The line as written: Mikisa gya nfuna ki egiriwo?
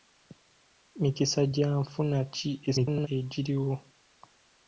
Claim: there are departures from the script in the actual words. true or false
true